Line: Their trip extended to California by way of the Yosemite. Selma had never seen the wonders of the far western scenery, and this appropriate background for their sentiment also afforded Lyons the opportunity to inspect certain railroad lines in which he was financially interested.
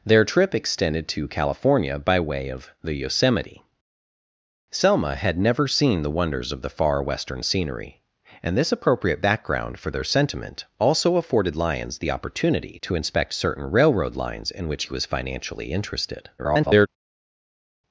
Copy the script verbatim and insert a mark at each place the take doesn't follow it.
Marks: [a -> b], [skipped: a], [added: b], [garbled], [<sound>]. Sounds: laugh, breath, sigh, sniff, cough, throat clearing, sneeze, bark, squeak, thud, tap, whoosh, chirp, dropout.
Their trip extended to California by way of the Yosemite. Selma had never seen the wonders of the far western scenery, and this appropriate background for their sentiment also afforded Lyons the opportunity to inspect certain railroad lines in which he was financially interested. [garbled]